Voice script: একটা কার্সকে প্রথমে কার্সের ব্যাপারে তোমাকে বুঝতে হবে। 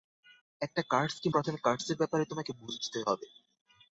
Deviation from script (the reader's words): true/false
false